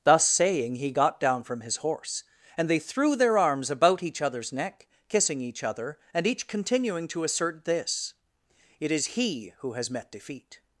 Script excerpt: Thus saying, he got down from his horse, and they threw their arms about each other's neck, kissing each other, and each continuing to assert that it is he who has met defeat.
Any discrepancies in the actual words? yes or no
yes